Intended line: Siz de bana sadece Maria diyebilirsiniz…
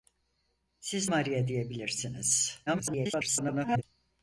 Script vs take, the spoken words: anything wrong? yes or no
yes